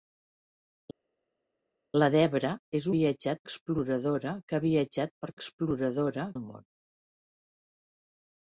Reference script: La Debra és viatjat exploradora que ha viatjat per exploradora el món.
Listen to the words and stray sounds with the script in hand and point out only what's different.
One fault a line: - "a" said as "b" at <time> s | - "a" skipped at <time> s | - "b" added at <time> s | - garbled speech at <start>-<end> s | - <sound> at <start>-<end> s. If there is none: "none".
none